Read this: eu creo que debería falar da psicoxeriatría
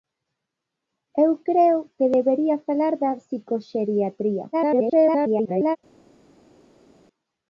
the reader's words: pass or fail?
fail